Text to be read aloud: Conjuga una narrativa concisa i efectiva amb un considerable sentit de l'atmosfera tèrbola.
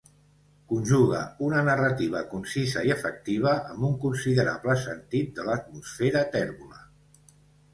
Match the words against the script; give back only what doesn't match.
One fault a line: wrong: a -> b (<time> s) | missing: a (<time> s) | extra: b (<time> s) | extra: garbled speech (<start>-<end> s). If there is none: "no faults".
no faults